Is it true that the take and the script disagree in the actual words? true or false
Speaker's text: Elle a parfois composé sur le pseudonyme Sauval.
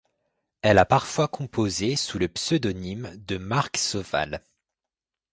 true